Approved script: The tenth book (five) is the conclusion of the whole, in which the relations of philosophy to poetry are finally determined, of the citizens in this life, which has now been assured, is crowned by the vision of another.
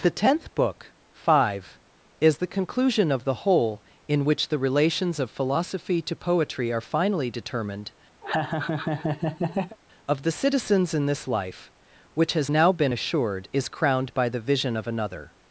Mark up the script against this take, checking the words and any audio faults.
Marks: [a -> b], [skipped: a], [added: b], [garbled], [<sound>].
The tenth book (five) is the conclusion of the whole, in which the relations of philosophy to poetry are finally determined, [laugh] of the citizens in this life, which has now been assured, is crowned by the vision of another.